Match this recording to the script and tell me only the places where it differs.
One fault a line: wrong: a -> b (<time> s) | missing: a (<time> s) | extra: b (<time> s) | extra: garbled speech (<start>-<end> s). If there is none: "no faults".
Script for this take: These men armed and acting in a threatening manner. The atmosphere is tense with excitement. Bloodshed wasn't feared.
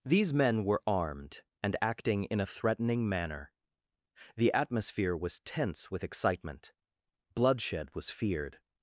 extra: were (0.7 s)
wrong: is -> was (5.2 s)
wrong: wasn't -> was (7.9 s)